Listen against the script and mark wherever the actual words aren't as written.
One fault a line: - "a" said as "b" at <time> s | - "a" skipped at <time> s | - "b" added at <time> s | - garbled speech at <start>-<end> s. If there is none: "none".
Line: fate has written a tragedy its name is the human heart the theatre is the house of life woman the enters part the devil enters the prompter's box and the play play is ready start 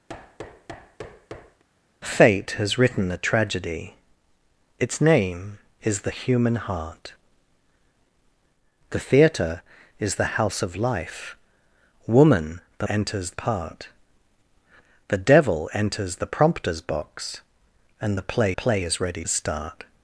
none